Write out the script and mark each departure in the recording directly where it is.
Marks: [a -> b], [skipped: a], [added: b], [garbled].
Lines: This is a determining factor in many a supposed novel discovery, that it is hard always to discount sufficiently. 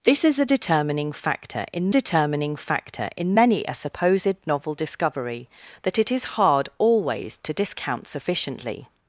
This is a determining factor in [added: determining factor in] many a supposed novel discovery, that it is hard always to discount sufficiently.